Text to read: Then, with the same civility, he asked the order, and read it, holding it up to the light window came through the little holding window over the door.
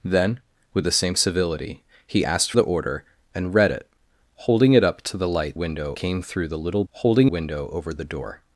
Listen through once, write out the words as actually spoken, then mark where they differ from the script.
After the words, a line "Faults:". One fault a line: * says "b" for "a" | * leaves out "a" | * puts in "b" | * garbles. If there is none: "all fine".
Then, with the same civility, he asked the order, and read it, holding it up to the light window came through the little holding window over the door.
Faults:
all fine